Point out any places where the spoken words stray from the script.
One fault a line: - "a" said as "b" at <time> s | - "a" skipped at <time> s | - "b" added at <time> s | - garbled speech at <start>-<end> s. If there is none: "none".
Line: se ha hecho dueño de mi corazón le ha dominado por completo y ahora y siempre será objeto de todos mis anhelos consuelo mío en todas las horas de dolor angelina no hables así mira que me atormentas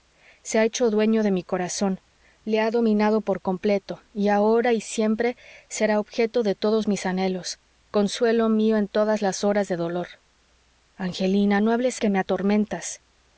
- "así mira" skipped at 12.0 s